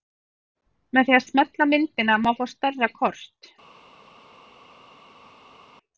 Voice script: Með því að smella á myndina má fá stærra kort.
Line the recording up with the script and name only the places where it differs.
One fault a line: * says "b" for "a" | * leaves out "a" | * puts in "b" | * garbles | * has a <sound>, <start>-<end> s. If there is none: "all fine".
all fine